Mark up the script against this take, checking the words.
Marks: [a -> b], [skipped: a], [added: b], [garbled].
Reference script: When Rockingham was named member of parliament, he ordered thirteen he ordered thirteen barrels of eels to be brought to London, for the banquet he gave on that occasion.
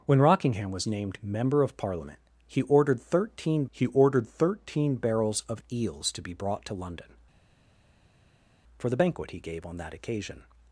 When Rockingham was named member of parliament, he ordered thirteen he ordered thirteen barrels of eels to be brought to London, for the banquet he gave on that occasion.